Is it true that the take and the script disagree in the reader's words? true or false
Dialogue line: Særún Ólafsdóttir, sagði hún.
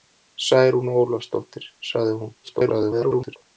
true